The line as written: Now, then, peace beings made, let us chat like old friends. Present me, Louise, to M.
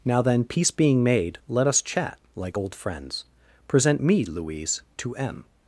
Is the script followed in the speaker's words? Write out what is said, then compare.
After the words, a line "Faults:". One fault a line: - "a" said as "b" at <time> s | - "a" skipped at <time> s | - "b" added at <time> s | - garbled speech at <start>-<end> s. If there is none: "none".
Now, then, peace being made, let us chat like old friends. Present me, Louise, to M.
Faults:
- "beings" said as "being" at 0.7 s